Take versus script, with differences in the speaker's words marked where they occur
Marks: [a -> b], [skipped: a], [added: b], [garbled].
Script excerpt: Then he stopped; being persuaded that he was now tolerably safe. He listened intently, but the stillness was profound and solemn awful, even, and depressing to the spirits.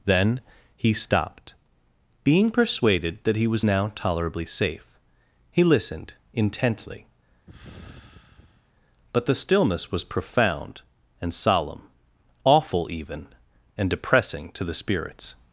Then he stopped; being persuaded that he was now tolerably safe. He listened intently, but the stillness was profound and solemn awful, even, and depressing to the spirits.